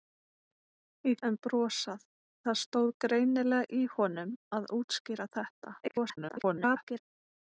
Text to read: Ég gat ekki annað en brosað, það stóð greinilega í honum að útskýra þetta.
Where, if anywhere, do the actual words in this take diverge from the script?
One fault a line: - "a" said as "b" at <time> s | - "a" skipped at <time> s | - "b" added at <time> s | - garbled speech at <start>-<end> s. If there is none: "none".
- "gat ekki annað" skipped at 1.2 s
- garbled speech at 5.8-7.0 s